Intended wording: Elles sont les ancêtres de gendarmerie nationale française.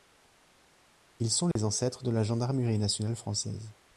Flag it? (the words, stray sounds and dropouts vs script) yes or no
yes